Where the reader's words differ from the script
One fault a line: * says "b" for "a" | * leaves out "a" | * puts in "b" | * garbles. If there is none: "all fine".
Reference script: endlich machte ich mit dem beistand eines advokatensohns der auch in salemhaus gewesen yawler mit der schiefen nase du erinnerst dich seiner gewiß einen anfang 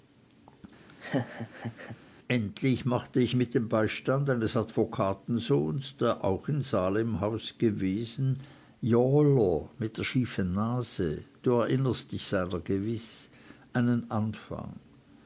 all fine